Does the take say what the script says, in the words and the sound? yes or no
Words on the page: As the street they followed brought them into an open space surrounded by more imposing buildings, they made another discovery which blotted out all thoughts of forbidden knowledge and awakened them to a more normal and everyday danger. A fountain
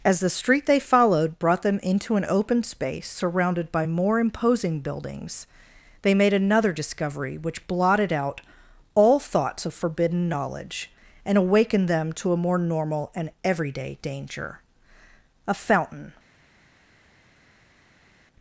yes